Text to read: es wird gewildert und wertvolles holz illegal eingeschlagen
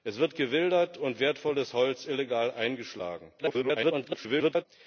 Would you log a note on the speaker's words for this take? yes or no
yes